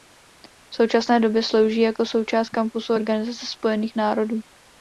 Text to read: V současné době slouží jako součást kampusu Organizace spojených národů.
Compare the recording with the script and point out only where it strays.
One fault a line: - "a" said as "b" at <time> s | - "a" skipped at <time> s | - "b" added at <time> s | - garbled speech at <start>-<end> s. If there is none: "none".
none